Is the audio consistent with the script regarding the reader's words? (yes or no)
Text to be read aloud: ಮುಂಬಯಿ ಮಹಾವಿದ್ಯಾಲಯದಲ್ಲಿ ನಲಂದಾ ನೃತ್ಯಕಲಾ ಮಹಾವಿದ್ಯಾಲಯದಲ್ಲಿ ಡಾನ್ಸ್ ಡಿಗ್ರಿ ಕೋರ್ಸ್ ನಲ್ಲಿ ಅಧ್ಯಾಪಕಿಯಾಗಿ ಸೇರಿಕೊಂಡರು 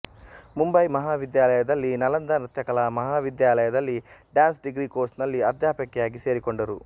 yes